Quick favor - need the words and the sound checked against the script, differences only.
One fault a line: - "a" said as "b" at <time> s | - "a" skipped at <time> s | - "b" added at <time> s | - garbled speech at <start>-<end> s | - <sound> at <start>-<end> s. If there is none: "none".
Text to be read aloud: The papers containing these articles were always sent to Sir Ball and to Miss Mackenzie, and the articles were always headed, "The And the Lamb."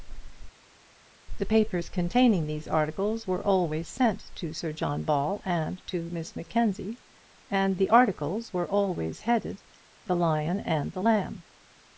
- "John" added at 4.7 s
- "Lion" added at 10.2 s